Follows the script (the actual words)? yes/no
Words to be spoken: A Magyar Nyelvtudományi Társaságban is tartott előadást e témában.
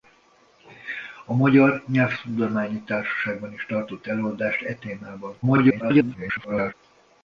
no